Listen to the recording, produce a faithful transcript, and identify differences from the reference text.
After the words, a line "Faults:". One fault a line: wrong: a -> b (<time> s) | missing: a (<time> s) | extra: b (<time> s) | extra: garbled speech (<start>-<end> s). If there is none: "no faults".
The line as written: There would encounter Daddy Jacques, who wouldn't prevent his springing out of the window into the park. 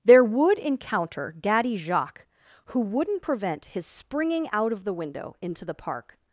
There would encounter Daddy Jacques, who wouldn't prevent his springing out of the window into the park.
Faults:
no faults